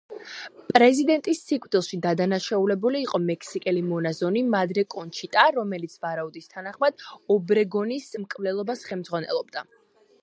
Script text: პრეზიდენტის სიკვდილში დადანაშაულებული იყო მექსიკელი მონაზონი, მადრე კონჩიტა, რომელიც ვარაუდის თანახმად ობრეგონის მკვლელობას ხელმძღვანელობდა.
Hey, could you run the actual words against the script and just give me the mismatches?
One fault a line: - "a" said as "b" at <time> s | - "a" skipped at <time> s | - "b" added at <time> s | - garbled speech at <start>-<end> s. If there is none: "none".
none